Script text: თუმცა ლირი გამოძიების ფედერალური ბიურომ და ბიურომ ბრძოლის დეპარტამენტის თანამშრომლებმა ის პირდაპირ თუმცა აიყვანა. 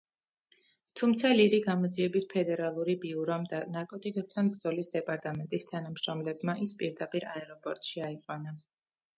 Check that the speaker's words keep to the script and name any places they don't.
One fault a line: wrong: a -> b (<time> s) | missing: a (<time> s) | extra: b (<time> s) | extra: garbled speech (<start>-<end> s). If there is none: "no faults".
wrong: ბიურომ -> ნარკოტიკებთან (3.8 s)
wrong: თუმცა -> აეროპორტში (7.3 s)